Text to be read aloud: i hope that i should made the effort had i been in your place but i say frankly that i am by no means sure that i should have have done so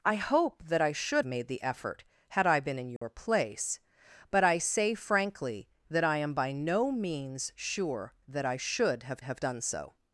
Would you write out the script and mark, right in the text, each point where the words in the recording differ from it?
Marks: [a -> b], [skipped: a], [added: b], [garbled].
i hope that i should made the effort had i been in your place but i say frankly that i am by no means sure that i should have have done so